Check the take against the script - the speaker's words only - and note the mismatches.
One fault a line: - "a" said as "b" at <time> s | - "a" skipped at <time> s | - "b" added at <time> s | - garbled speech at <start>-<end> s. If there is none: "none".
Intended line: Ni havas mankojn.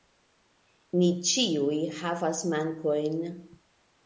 - "ĉiuj" added at 1.3 s